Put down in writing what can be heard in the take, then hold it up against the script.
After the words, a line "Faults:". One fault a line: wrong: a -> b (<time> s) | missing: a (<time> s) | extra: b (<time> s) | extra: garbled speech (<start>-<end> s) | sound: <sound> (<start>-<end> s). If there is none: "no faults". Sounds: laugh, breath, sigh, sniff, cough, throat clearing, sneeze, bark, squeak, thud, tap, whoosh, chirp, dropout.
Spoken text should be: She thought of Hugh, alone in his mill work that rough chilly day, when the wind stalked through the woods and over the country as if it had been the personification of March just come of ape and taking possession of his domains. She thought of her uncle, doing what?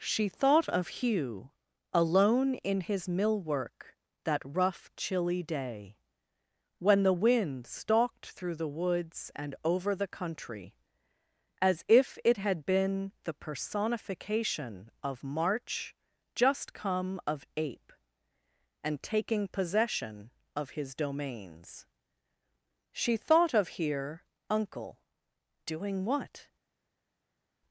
She thought of Hugh, alone in his mill work that rough chilly day, when the wind stalked through the woods and over the country as if it had been the personification of March just come of ape and taking possession of his domains. She thought of here uncle, doing what?
Faults:
wrong: her -> here (23.8 s)